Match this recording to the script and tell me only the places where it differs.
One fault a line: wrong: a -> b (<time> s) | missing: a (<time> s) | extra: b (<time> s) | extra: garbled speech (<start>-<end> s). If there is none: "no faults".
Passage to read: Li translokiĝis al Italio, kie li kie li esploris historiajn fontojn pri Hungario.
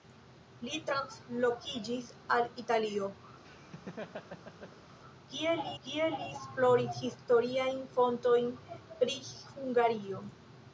no faults